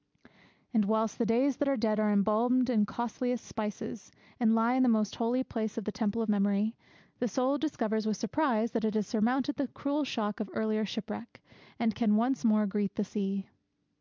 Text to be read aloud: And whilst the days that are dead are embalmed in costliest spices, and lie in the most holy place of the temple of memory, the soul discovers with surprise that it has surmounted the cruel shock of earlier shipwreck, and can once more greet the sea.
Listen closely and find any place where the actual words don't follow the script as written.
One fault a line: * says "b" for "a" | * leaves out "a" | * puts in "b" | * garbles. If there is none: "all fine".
all fine